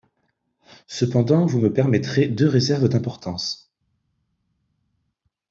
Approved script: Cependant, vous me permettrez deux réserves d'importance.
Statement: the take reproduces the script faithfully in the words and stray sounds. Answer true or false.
true